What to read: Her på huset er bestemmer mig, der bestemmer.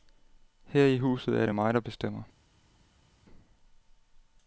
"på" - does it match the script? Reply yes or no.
no